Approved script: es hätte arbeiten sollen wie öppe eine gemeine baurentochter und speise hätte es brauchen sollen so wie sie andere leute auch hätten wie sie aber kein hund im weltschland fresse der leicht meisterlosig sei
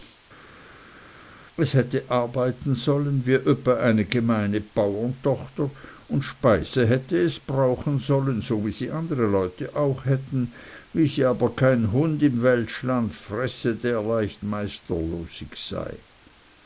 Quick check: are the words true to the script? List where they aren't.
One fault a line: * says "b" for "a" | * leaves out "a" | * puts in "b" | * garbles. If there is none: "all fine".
all fine